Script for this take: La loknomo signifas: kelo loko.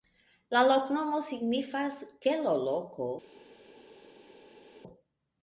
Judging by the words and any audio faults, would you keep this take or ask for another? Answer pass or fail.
pass